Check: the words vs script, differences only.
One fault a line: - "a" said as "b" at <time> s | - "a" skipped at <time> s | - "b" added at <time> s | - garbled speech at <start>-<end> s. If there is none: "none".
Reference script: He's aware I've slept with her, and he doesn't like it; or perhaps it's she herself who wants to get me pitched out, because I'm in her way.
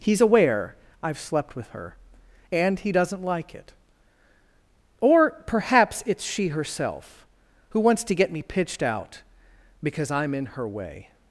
none